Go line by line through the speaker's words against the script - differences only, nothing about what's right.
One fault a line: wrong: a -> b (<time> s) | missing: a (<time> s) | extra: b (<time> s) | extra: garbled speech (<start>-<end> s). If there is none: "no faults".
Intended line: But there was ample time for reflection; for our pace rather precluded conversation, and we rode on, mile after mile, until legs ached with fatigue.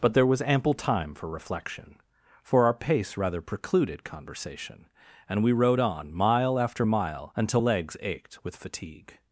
no faults